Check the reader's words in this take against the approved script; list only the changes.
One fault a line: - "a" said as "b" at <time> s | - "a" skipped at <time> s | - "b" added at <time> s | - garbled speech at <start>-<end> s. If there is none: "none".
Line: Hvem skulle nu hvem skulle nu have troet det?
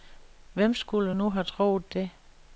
- "hvem skulle nu" skipped at 1.3 s